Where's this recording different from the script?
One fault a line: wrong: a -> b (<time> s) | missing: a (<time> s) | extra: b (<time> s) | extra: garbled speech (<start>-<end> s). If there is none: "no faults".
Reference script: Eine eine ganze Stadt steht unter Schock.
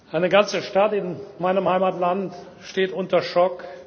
missing: eine (0.3 s)
extra: in meinem Heimatland (0.9 s)